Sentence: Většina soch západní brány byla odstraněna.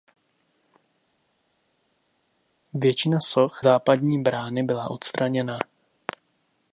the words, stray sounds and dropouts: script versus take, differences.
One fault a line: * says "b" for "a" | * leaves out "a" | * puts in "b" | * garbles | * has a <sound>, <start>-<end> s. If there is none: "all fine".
all fine